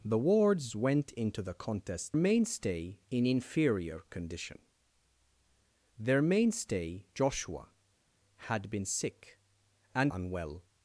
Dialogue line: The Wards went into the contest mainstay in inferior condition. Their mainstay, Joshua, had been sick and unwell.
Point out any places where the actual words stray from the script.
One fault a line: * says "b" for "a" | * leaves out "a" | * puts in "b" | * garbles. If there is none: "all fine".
all fine